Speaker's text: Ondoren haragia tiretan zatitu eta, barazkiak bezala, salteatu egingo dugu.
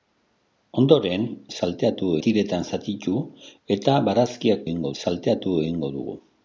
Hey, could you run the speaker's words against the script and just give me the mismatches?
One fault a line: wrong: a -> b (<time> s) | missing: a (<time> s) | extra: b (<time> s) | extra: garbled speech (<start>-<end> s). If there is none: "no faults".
wrong: haragia -> salteatu (1.6 s)
wrong: bezala -> egingo (4.7 s)